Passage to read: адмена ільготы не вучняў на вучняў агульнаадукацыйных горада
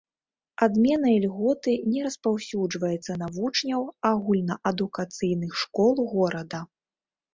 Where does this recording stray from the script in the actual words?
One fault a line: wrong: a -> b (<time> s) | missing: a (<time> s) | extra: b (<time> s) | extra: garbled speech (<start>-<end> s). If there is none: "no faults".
wrong: вучняў -> распаўсюджваецца (2.1 s)
extra: школ (5.6 s)